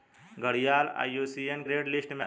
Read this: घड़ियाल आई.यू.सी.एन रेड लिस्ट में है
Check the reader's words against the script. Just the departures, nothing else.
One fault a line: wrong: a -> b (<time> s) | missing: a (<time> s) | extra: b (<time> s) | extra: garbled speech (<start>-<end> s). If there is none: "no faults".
no faults